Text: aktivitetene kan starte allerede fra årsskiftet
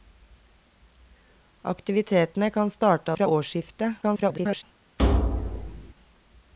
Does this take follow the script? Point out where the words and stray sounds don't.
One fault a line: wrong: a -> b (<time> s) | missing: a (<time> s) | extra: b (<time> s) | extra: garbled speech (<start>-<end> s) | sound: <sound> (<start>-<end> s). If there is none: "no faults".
missing: allerede (3.1 s)
extra: garbled speech (4.0-4.6 s)
sound: thud (5.0-5.9 s)